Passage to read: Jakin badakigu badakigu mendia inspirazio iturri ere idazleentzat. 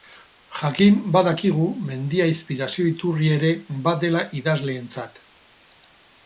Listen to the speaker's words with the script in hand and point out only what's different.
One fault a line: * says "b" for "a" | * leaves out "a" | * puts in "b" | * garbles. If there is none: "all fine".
* leaves out "badakigu"
* puts in "badela"